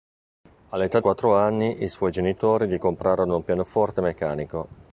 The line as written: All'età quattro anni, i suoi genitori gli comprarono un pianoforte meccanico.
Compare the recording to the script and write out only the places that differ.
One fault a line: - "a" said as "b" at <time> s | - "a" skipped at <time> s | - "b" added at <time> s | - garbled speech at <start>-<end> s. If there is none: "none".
none